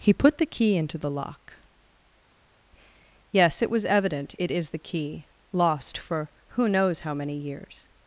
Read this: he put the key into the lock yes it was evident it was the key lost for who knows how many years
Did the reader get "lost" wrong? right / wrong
right